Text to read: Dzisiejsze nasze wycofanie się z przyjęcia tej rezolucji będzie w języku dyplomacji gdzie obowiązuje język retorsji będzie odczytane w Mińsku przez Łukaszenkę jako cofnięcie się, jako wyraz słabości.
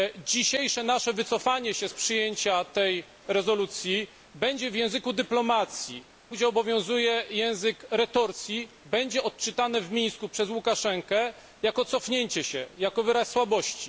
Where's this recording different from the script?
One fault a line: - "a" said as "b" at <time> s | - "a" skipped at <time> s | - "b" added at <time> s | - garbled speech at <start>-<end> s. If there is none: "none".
none